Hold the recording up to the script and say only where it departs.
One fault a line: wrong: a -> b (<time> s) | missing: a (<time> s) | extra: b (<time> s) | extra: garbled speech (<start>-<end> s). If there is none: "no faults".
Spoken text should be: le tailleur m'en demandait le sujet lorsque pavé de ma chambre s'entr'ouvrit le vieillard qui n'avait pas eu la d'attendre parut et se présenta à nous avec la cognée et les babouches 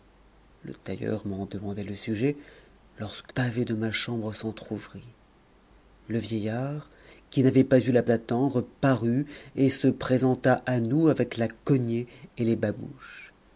no faults